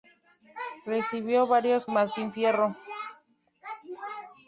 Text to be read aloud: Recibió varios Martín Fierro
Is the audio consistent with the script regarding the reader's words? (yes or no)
yes